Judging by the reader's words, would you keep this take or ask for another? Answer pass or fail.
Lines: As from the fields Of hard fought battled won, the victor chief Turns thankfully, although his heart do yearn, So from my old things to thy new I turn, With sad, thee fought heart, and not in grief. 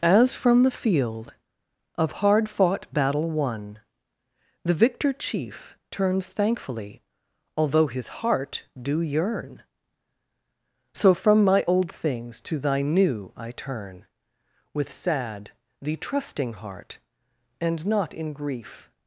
fail